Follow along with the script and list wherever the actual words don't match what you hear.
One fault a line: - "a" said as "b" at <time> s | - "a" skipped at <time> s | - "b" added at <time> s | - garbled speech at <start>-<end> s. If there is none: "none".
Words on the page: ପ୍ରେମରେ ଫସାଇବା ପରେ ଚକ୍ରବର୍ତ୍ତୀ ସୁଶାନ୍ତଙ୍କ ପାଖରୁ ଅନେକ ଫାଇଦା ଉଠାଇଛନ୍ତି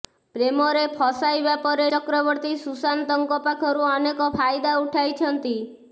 none